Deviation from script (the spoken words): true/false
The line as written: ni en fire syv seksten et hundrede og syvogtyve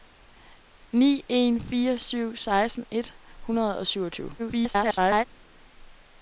true